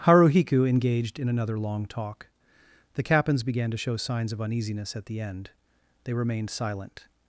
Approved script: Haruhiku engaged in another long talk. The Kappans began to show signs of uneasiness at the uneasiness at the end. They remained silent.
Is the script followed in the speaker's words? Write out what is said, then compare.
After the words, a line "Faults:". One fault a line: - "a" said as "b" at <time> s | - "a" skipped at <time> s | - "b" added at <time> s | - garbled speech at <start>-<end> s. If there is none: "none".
Haruhiku engaged in another long talk. The Kappans began to show signs of uneasiness at the end. They remained silent.
Faults:
- "uneasiness at the" skipped at 5.2 s